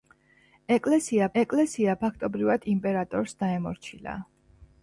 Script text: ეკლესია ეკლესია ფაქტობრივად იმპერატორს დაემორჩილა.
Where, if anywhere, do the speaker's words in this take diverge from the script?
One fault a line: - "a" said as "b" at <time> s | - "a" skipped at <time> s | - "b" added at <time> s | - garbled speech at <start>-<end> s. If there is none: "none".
none